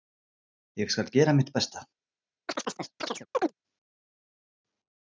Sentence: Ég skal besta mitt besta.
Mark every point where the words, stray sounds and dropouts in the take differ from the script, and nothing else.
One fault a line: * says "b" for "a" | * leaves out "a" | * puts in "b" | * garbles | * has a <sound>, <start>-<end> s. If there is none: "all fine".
* says "gera" for "besta"
* has a chirp, 2.5-3.5 s